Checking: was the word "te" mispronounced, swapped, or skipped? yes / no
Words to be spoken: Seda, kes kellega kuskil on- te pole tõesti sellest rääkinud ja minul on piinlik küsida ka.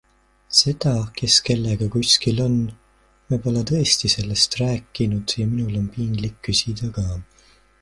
yes